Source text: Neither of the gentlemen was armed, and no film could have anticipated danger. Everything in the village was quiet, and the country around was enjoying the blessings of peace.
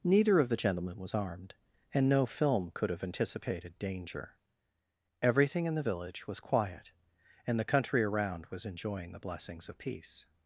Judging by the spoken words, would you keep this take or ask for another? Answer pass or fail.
pass